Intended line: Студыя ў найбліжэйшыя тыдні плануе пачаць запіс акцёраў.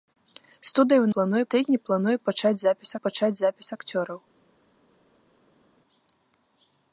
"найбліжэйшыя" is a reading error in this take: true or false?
true